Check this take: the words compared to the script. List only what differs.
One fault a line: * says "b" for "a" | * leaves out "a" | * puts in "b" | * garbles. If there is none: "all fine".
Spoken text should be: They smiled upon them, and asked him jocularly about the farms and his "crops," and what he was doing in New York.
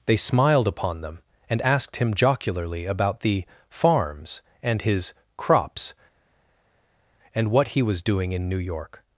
all fine